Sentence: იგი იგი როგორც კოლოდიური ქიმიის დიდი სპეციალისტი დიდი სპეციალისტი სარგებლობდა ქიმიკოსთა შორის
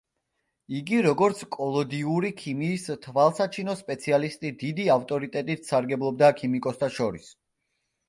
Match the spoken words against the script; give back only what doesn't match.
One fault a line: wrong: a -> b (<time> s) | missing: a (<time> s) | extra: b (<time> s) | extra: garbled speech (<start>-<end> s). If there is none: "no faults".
missing: იგი (1.0 s)
wrong: დიდი -> თვალსაჩინო (3.0 s)
wrong: სპეციალისტი -> ავტორიტეტით (5.0 s)